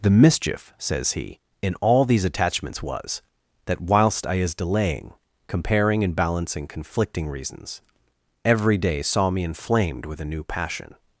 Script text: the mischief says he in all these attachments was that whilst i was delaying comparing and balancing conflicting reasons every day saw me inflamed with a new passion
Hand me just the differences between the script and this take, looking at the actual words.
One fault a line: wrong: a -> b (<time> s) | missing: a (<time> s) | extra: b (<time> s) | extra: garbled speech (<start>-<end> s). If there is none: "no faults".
wrong: was -> is (4.3 s)